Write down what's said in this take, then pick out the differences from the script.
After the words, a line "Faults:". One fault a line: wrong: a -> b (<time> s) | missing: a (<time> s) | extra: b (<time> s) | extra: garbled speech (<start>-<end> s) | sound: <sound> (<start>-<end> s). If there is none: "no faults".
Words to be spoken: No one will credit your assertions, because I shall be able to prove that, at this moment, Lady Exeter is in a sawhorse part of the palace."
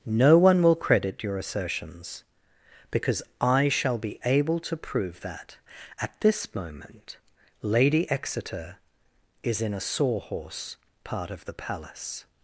No one will credit your assertions, because I shall be able to prove that, at this moment, Lady Exeter is in a sawhorse part of the palace."
Faults:
no faults